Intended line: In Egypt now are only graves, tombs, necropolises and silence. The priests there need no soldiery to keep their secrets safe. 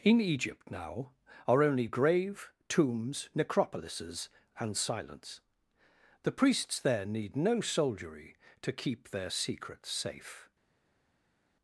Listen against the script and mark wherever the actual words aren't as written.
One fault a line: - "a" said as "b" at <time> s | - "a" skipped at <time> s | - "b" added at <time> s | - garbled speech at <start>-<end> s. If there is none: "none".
- "graves" said as "grave" at 1.9 s